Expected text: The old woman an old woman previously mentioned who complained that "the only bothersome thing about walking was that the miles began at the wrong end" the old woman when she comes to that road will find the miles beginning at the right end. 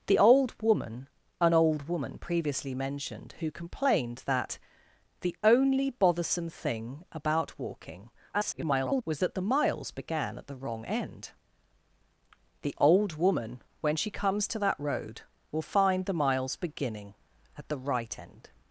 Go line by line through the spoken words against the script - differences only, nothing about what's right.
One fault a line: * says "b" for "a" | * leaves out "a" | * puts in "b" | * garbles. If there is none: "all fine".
* garbles